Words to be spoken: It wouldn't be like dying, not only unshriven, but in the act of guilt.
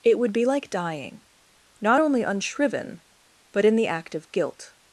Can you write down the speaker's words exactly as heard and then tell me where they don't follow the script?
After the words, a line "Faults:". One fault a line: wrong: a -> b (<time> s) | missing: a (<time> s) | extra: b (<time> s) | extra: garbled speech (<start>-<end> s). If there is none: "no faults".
It would be like dying, not only unshriven, but in the act of guilt.
Faults:
wrong: wouldn't -> would (0.2 s)